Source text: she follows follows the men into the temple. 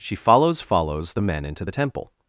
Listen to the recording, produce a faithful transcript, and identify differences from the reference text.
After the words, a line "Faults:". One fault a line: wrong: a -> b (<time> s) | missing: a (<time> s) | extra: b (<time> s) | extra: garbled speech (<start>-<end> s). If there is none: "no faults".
she follows follows the men into the temple.
Faults:
no faults